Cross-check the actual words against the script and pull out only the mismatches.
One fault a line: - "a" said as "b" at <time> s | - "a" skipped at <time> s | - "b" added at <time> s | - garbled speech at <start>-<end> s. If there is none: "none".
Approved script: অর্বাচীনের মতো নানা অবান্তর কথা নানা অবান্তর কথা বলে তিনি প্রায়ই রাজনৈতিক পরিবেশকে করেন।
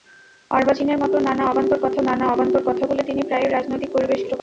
none